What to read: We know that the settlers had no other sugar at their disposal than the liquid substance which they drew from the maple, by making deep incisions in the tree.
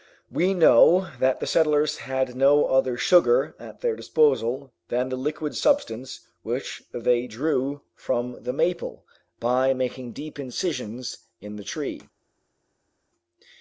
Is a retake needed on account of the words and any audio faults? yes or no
no